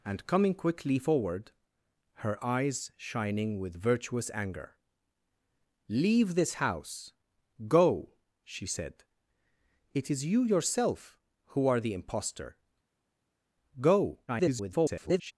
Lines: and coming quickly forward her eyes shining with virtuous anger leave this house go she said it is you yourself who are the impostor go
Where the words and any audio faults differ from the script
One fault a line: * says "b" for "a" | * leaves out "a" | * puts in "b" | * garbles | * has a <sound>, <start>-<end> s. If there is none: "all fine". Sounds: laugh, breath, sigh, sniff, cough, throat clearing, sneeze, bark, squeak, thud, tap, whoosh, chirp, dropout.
* garbles